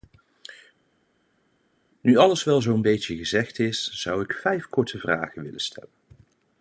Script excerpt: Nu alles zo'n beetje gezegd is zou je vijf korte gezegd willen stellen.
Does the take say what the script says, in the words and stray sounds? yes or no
no